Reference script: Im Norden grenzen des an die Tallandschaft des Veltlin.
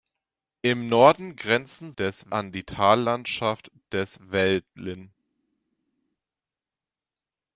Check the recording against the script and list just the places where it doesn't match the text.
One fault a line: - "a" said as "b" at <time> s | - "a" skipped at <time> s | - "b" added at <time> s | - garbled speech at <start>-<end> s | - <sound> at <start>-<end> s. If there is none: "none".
none